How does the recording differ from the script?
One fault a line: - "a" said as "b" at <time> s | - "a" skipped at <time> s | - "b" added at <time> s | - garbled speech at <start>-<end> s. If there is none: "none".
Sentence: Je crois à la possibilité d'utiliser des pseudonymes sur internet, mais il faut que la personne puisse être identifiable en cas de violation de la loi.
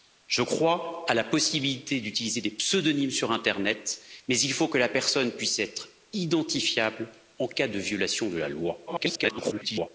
- garbled speech at 8.9-9.9 s